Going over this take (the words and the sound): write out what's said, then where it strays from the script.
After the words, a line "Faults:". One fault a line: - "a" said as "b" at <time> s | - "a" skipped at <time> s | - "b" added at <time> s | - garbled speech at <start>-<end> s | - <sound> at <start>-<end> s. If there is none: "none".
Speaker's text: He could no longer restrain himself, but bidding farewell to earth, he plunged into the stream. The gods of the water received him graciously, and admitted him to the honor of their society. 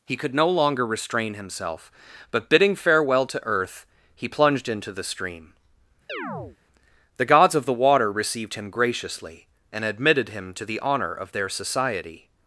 He could no longer restrain himself, but bidding farewell to earth, he plunged into the stream. The gods of the water received him graciously, and admitted him to the honor of their society.
Faults:
- chirp at 6.1-6.6 s